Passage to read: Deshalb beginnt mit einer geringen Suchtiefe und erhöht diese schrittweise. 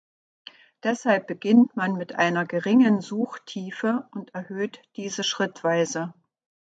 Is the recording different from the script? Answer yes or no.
yes